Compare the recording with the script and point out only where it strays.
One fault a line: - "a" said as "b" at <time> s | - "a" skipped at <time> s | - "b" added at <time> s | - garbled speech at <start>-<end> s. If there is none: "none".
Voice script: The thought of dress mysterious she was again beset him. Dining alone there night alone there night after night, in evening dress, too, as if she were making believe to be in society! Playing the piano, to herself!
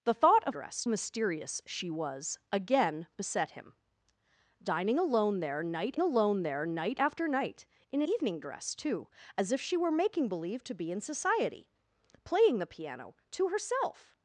none